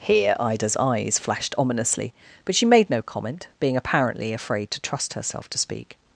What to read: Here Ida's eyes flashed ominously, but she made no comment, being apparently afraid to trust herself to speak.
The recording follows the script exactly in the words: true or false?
true